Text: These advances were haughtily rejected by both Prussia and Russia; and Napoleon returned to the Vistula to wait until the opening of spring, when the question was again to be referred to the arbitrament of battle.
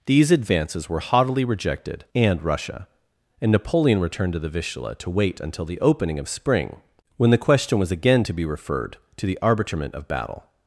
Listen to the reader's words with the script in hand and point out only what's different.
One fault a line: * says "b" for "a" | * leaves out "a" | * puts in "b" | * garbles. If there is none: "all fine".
* leaves out "by both Prussia"